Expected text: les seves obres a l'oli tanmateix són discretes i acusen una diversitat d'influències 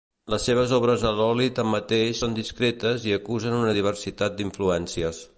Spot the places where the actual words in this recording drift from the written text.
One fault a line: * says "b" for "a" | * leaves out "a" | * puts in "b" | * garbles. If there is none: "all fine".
all fine